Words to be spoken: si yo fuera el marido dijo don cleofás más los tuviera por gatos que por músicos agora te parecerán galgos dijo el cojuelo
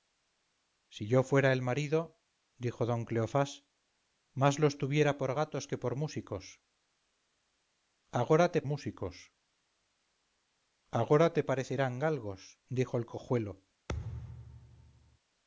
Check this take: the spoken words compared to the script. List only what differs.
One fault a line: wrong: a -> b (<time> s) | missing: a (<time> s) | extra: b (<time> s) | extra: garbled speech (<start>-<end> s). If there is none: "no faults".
extra: músicos agora te (8.6 s)